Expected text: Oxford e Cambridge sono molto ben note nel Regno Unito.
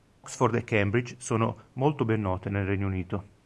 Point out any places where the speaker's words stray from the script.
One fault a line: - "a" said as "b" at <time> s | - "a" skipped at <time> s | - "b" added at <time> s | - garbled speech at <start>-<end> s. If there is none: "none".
none